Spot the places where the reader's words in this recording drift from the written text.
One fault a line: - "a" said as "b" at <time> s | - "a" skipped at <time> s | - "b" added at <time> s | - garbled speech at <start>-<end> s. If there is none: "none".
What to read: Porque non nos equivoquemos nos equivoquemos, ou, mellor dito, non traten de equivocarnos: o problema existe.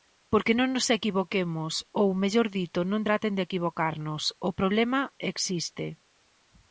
- "nos equivoquemos" skipped at 1.7 s